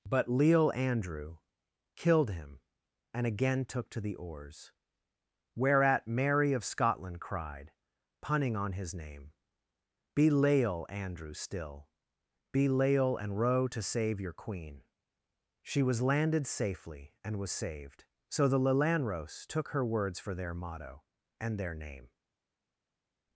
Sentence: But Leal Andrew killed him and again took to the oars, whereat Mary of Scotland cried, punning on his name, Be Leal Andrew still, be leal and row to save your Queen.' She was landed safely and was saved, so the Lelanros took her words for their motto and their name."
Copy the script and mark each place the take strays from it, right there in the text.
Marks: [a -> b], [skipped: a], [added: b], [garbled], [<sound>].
But Leal Andrew killed him and again took to the oars, whereat Mary of Scotland cried, punning on his name, Be Leal Andrew still, be leal and row to save your Queen.' She was landed safely and was saved, so the Lelanros took her words for their motto and their name."